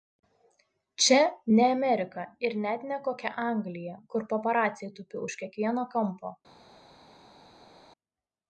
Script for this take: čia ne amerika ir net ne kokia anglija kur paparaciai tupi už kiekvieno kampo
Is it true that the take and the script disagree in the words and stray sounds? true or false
false